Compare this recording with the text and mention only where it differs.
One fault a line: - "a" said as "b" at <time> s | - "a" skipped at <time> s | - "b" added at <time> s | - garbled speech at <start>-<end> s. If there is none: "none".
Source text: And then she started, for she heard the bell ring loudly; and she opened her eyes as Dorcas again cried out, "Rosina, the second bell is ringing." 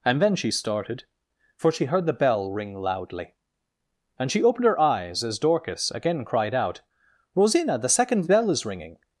none